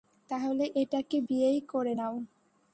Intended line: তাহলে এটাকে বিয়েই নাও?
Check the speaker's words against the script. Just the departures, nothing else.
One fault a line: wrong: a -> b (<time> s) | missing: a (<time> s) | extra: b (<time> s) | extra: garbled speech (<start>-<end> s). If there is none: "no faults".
extra: করে (1.7 s)